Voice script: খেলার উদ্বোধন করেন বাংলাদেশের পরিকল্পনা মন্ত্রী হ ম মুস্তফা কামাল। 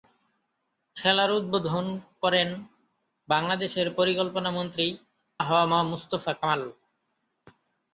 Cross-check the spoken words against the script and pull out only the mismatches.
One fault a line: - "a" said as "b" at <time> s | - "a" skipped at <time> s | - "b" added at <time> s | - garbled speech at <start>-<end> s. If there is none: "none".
none